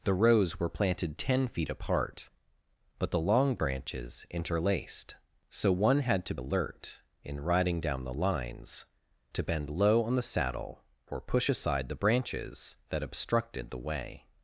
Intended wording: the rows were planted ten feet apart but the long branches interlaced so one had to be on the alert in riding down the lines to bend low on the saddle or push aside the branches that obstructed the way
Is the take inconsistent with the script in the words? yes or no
yes